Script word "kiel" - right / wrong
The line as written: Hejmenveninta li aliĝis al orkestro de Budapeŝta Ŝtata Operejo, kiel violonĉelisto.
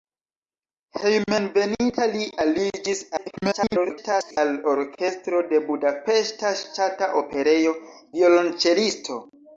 wrong